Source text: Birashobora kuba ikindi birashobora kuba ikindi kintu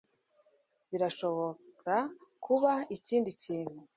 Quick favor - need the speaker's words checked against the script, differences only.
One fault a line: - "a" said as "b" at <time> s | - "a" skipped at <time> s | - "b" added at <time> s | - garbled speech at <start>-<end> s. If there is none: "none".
- "birashobora kuba ikindi" skipped at 3.3 s